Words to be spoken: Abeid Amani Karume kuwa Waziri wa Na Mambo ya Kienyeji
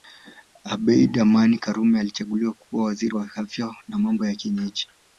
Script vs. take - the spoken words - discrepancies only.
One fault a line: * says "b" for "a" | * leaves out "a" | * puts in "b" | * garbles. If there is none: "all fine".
* puts in "alichaguliwa"
* puts in "Afya"